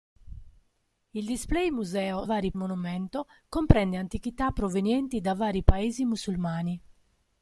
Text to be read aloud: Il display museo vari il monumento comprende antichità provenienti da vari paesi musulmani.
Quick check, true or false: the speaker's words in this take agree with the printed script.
true